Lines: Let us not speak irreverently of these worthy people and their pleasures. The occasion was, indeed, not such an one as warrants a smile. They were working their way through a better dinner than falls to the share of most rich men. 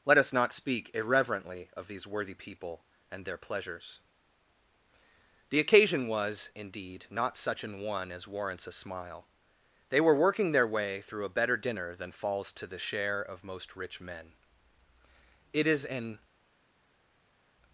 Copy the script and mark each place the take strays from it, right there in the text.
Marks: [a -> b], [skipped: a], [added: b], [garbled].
Let us not speak irreverently of these worthy people and their pleasures. The occasion was, indeed, not such an one as warrants a smile. They were working their way through a better dinner than falls to the share of most rich men. [added: It is an]